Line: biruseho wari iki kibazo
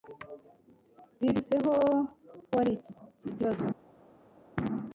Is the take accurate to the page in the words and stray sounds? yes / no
yes